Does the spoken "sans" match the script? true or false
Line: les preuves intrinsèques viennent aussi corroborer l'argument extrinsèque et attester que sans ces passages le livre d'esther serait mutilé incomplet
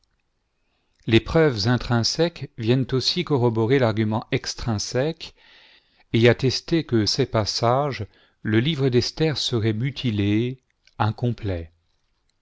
false